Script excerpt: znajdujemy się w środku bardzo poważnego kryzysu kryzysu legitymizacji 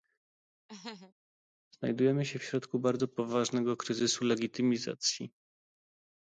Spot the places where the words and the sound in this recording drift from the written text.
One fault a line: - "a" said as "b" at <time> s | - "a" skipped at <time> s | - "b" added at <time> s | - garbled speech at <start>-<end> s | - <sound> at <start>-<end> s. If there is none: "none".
- laugh at 0.7-1.1 s
- "kryzysu" skipped at 4.2 s